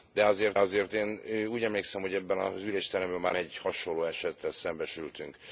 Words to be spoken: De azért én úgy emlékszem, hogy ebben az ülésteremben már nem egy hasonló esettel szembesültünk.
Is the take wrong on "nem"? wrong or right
wrong